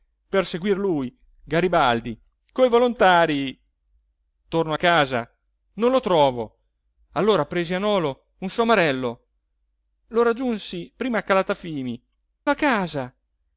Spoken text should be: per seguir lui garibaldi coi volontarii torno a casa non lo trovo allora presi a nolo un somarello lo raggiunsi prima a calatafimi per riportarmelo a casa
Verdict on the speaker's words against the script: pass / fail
fail